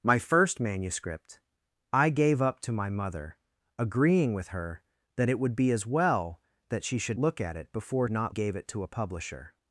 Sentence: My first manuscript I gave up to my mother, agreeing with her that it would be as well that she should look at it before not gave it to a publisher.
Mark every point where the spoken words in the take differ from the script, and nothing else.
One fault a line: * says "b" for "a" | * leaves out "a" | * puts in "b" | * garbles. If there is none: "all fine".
all fine